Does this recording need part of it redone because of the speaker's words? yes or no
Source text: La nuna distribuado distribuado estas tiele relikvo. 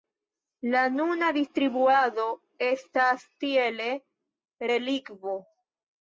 yes